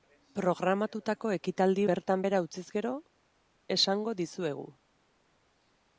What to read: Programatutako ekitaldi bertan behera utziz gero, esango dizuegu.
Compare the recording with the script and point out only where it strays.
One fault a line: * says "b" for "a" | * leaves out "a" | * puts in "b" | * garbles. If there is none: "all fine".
all fine